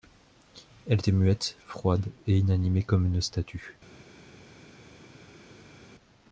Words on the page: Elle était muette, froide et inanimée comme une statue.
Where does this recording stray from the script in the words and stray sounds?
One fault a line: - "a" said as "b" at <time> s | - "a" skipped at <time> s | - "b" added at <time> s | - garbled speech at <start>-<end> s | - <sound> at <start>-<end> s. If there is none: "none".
none